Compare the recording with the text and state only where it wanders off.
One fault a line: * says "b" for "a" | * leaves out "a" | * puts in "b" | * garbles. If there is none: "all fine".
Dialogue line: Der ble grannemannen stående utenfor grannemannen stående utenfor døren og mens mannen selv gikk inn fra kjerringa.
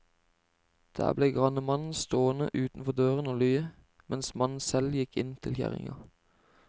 * leaves out "grannemannen stående utenfor"
* puts in "lye"
* says "til" for "fra"